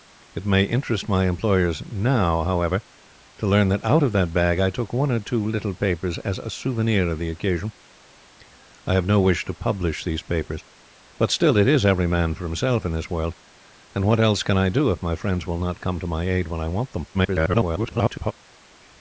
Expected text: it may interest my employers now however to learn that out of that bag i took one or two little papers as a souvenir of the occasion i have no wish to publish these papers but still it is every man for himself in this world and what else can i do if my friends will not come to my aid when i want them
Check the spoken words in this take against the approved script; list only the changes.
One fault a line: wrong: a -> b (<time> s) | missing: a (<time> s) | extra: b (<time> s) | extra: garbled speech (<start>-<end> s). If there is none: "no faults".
extra: garbled speech (17.1-18.3 s)